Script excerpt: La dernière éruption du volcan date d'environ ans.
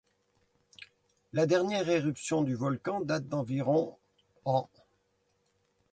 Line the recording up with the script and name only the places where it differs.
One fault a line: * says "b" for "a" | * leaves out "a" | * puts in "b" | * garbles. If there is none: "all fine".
all fine